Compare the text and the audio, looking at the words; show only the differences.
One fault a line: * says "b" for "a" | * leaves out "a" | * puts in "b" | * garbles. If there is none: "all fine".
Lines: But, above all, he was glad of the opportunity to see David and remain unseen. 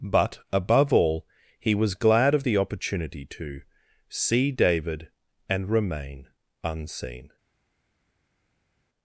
all fine